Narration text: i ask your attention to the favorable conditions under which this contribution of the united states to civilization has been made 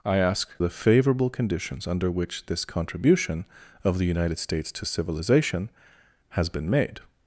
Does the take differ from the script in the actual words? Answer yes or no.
yes